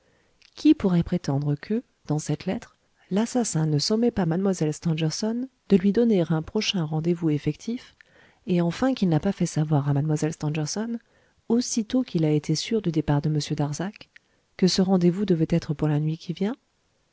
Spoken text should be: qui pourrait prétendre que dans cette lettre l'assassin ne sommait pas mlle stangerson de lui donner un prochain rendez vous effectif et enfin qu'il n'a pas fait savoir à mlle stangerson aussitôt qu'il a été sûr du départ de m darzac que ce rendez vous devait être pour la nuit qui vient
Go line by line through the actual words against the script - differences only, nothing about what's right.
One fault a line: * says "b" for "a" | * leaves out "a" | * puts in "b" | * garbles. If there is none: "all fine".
all fine